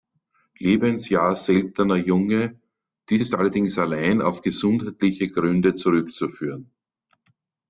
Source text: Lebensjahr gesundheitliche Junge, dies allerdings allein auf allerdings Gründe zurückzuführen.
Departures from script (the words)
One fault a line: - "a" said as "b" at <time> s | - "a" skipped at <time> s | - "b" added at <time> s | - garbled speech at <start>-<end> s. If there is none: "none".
- "gesundheitliche" said as "seltener" at 1.4 s
- "ist" added at 3.2 s
- "allerdings" said as "gesundheitliche" at 4.4 s